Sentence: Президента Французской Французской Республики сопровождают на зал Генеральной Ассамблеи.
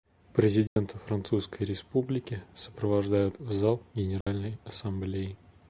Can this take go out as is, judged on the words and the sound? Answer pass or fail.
fail